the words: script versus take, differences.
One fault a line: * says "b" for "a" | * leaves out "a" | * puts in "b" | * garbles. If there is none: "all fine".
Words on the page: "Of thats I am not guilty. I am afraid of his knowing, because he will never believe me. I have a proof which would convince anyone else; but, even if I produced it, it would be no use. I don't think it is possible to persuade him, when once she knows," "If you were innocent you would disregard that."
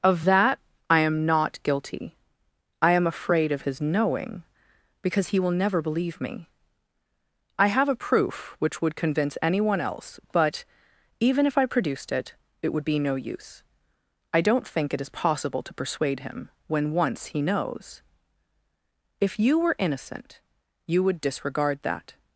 * says "that" for "thats"
* says "he" for "she"